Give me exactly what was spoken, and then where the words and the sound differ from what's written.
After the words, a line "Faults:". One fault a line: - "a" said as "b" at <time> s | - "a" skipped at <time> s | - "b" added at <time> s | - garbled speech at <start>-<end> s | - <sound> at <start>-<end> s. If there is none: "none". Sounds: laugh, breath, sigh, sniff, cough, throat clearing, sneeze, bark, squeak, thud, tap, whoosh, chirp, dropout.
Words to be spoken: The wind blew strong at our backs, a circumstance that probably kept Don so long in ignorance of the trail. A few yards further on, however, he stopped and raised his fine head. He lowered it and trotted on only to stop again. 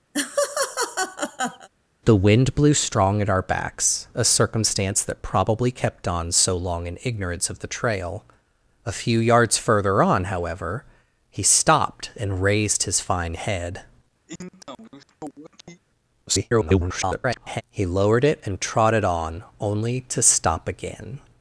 The wind blew strong at our backs, a circumstance that probably kept Don so long in ignorance of the trail. A few yards further on, however, he stopped and raised his fine head. [garbled] He lowered it and trotted on only to stop again.
Faults:
- laugh at 0.1-1.7 s
- sniff at 14.3-15.8 s
- garbled speech at 16.3-17.6 s